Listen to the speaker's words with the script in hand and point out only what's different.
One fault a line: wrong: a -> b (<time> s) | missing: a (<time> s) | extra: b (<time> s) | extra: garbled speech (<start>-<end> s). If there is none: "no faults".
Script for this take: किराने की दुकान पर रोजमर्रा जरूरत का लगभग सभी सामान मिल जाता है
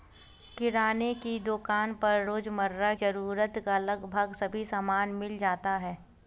no faults